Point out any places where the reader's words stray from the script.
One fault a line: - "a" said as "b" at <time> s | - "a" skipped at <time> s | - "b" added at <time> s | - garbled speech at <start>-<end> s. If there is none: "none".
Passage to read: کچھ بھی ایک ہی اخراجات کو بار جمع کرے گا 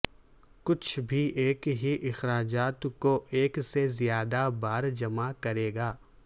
- "ایک سے زیادہ" added at 3.3 s